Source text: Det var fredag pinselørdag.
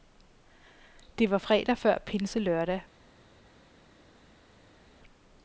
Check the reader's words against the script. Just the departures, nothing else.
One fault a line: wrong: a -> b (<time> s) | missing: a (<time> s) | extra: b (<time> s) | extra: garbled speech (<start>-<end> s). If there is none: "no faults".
extra: før (1.8 s)